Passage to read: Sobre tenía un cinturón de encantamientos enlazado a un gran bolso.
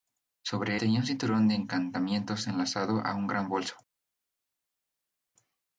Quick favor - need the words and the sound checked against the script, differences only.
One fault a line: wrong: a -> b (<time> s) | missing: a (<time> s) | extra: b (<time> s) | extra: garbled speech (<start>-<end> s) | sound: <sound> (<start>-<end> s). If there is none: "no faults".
no faults